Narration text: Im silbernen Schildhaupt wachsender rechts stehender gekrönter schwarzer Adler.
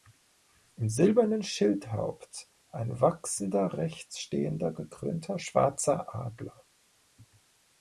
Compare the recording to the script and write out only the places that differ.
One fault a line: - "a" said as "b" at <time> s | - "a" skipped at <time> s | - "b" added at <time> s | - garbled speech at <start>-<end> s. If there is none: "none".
- "ein" added at 2.7 s